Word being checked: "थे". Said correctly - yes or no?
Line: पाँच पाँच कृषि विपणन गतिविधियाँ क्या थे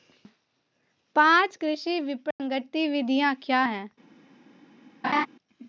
no